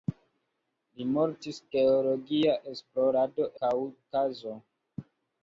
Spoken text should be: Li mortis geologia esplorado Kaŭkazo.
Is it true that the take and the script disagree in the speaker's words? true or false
false